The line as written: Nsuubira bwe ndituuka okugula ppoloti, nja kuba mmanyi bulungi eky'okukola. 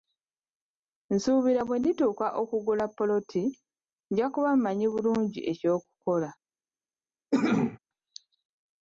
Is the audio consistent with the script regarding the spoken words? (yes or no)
yes